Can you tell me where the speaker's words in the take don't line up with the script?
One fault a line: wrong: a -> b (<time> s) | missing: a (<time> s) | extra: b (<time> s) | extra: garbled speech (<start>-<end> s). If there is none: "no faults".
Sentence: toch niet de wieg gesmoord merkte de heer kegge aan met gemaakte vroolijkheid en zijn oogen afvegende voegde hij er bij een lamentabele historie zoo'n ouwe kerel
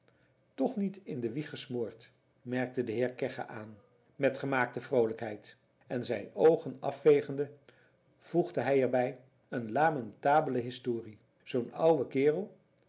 extra: in (1.0 s)